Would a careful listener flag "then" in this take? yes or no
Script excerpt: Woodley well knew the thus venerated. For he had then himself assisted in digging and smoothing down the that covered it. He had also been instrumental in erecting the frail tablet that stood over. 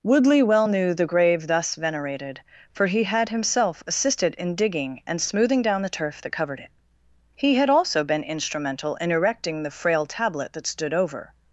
yes